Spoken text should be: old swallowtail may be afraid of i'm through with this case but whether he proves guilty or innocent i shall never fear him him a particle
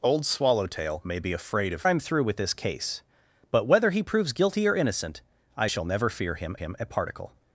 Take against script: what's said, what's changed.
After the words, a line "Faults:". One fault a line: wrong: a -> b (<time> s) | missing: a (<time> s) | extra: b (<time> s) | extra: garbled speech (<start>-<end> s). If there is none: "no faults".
old swallowtail may be afraid of i'm through with this case but whether he proves guilty or innocent i shall never fear him him a particle
Faults:
no faults